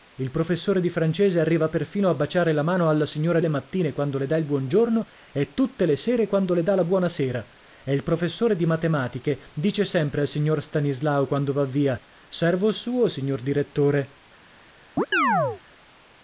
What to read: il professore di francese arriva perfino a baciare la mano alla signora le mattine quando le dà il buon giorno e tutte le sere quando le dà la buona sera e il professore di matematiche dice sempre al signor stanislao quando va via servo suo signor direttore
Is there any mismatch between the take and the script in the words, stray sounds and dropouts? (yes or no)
yes